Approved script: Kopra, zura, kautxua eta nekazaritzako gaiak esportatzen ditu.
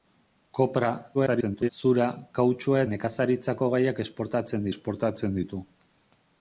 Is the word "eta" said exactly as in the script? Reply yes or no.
no